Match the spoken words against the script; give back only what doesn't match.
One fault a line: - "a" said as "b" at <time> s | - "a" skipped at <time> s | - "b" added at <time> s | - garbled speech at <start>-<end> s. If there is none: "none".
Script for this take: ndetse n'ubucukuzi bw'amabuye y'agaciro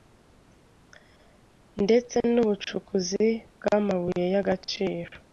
none